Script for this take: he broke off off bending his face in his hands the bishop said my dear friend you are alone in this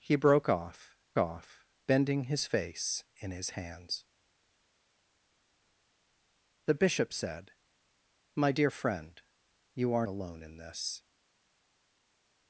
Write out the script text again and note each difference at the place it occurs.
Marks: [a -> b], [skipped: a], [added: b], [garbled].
he broke off off bending his face in his hands the bishop said my dear friend you are alone in this